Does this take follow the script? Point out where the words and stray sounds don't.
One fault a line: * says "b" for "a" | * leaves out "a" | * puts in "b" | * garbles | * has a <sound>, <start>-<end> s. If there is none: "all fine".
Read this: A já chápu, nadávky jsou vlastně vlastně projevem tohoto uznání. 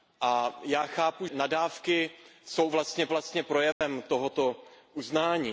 * has a dropout, 3.7-3.8 s